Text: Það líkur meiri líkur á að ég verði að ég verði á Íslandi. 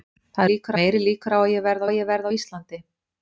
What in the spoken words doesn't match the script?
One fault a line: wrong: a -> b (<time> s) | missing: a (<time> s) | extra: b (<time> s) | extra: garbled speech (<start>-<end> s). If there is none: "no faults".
no faults